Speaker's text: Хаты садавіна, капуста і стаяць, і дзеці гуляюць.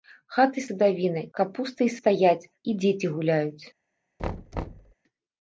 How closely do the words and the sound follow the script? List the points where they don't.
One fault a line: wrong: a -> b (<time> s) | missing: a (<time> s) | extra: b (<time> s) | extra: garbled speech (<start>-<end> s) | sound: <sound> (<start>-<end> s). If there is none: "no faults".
sound: thud (4.2-4.9 s)